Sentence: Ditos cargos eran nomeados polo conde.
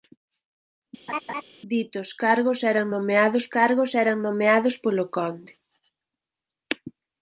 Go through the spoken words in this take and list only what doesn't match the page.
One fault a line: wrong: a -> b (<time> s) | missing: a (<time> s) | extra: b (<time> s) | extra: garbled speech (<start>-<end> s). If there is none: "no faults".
extra: cargos eran nomeados (3.5 s)